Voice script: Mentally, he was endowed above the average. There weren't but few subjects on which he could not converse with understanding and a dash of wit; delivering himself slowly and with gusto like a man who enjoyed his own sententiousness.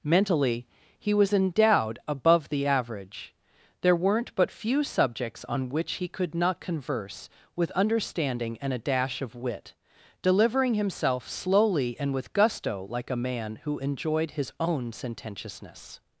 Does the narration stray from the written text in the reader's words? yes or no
no